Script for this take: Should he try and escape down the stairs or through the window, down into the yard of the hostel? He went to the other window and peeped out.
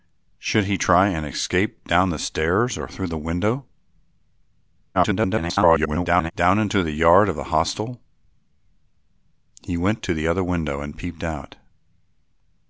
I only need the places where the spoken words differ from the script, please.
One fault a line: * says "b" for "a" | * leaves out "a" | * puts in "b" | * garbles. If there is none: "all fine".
* garbles